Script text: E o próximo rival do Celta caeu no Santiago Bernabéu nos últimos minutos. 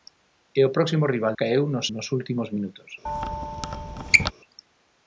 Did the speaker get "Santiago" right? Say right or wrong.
wrong